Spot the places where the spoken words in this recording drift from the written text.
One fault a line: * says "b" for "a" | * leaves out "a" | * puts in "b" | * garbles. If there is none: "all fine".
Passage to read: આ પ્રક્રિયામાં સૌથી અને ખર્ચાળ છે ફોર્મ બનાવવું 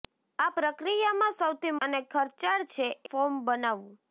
all fine